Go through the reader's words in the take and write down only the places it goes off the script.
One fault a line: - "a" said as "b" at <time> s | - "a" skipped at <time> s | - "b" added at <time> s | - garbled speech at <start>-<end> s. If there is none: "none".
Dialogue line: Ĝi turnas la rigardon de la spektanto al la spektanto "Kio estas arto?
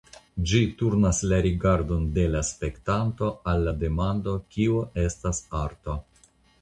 - "spektanto" said as "demando" at 3.8 s